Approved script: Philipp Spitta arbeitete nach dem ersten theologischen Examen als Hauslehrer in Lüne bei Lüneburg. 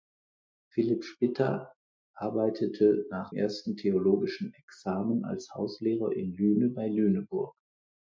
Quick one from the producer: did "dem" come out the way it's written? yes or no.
no